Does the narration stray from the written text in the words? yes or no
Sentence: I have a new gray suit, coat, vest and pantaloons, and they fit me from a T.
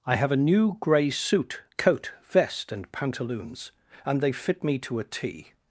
yes